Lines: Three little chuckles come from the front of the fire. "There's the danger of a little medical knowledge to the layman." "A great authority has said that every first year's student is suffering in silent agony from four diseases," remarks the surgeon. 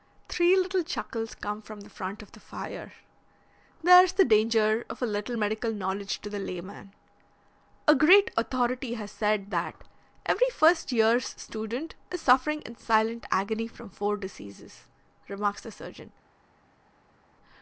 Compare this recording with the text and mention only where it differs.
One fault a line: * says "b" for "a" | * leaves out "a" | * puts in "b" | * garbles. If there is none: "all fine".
all fine